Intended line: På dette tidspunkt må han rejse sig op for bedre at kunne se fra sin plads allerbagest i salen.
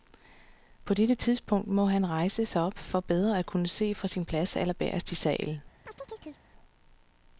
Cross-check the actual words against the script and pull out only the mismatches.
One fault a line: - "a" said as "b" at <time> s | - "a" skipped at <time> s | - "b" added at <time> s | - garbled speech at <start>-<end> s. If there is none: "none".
none